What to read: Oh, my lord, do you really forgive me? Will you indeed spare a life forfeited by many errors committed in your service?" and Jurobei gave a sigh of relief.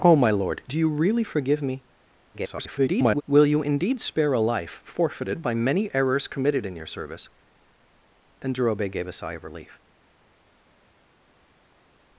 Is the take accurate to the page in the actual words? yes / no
no